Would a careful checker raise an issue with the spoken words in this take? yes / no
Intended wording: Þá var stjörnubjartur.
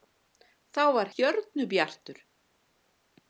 no